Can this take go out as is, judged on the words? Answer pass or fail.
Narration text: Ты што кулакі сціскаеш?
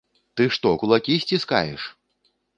pass